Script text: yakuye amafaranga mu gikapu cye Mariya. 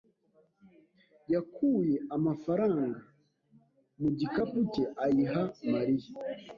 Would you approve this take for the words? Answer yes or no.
no